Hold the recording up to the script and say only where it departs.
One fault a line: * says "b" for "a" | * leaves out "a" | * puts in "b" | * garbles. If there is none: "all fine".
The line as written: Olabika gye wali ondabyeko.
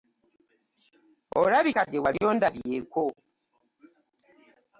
all fine